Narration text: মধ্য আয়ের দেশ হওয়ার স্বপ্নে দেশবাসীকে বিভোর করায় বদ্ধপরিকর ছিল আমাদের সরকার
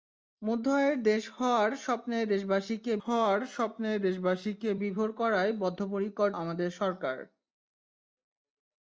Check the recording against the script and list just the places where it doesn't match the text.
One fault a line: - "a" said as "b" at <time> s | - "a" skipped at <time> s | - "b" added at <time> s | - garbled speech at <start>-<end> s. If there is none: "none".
- "হওয়ার স্বপ্নে দেশবাসীকে" added at 3.0 s
- "ছিল" skipped at 6.3 s